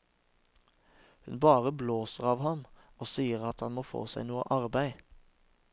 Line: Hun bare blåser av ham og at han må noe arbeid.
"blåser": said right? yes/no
yes